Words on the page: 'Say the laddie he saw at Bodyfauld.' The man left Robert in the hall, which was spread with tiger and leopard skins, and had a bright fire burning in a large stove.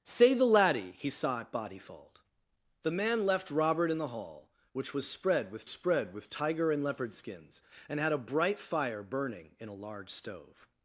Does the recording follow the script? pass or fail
fail